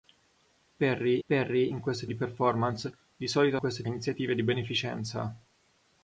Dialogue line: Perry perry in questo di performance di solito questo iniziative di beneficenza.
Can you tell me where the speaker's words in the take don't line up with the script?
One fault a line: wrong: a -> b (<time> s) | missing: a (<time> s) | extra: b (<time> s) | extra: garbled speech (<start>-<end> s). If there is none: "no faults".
no faults